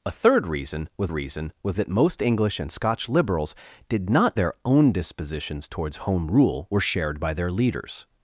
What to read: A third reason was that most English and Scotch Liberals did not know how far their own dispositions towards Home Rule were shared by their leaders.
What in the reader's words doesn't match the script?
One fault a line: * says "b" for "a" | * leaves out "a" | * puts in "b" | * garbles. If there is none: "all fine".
* puts in "reason was"
* leaves out "know how far"